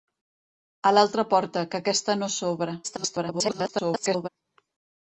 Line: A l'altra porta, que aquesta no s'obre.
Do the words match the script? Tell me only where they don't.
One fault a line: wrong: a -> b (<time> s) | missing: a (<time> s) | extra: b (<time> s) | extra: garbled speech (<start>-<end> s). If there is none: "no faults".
extra: garbled speech (2.8-4.3 s)